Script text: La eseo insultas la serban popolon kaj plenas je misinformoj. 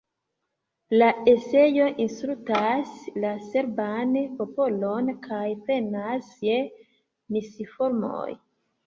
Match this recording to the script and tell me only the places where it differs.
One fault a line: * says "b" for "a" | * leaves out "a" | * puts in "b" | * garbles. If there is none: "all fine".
all fine